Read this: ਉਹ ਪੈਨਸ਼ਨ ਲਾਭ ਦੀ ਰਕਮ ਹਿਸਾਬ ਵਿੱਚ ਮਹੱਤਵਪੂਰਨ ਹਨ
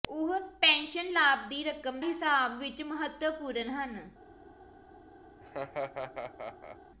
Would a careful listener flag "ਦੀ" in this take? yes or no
no